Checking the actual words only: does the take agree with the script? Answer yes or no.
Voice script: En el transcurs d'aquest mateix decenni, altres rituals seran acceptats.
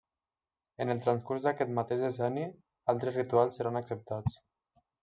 yes